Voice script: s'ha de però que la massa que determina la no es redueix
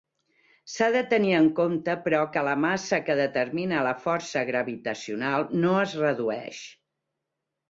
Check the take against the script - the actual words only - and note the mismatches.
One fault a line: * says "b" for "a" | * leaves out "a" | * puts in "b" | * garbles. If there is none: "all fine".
* puts in "tenir en compte"
* puts in "força gravitacional"